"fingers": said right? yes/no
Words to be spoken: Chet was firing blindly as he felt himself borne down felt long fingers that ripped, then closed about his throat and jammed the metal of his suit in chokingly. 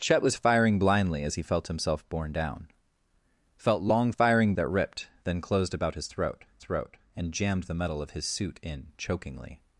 no